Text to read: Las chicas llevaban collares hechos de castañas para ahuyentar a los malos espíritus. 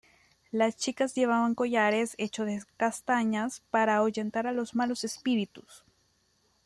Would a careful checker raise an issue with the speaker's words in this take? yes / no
no